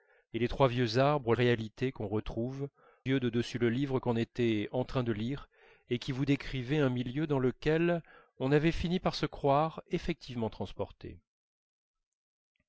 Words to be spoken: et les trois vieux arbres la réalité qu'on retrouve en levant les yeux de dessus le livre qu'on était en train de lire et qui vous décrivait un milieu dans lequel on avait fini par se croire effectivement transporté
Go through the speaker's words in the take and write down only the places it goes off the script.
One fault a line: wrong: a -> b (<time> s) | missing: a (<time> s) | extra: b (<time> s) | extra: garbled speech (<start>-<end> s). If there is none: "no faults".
missing: la (1.4 s)
missing: en levant les (2.7 s)